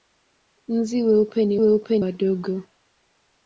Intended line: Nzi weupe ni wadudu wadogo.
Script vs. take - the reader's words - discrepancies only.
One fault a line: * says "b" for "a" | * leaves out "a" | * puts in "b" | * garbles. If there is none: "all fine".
* says "weupe" for "wadudu"